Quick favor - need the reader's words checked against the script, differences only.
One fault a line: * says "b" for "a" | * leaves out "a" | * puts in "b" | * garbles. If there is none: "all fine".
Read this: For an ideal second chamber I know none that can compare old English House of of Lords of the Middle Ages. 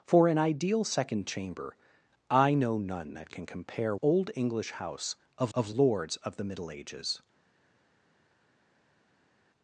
all fine